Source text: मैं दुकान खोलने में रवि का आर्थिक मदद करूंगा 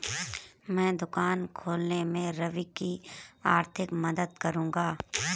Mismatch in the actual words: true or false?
true